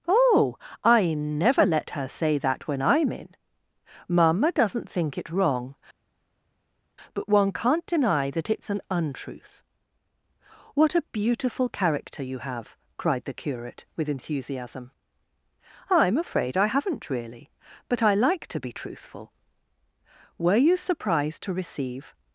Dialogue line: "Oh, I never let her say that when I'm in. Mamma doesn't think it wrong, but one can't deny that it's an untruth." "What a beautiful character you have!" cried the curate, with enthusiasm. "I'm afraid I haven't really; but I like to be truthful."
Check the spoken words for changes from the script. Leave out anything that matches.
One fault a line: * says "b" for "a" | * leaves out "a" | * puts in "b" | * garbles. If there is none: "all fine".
* puts in "Were you surprised to receive"